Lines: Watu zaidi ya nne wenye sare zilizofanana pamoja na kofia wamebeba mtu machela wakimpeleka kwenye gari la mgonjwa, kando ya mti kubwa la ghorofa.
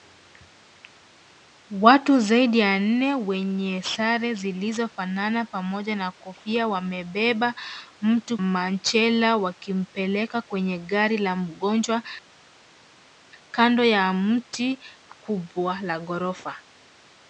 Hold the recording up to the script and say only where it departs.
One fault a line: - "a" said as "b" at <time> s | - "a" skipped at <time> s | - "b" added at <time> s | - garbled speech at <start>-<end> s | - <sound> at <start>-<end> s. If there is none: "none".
none